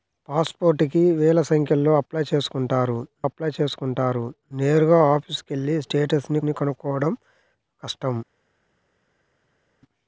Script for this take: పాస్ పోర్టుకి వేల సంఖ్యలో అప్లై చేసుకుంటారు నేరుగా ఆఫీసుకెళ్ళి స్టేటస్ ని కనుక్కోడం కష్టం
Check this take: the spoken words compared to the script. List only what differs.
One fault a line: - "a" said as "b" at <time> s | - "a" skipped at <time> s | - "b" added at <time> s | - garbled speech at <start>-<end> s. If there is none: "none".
- "అప్లై చేసుకుంటారు" added at 3.2 s
- "ని" added at 6.4 s